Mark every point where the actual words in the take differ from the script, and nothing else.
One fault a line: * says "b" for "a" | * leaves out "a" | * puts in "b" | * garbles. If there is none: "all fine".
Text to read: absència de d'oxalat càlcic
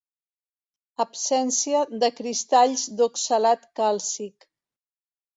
* puts in "cristalls"